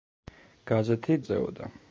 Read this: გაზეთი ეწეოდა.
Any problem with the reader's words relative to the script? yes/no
no